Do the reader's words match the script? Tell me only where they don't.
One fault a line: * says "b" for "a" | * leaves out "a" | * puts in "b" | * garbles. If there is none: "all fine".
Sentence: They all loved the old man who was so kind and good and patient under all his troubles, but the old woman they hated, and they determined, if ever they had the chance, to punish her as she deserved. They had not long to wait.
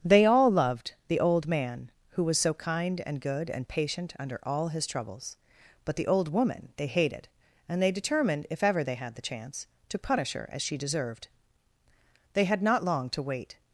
all fine